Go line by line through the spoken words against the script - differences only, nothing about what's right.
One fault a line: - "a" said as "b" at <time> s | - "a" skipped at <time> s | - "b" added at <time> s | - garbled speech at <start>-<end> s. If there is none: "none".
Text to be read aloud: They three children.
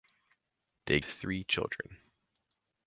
none